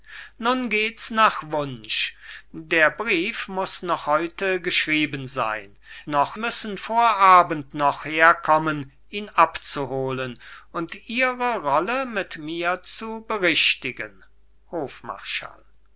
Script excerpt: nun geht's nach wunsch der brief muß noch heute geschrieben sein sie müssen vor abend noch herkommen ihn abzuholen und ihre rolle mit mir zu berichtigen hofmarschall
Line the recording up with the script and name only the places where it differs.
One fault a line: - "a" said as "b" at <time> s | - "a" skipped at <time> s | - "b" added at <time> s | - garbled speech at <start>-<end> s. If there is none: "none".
- "sie" said as "noch" at 6.1 s